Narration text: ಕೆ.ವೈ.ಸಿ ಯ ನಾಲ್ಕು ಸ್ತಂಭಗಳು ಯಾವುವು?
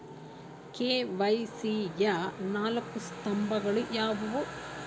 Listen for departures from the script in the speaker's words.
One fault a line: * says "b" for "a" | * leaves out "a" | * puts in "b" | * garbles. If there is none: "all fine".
all fine